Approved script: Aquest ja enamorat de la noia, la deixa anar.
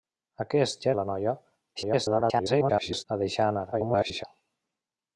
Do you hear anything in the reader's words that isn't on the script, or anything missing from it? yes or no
yes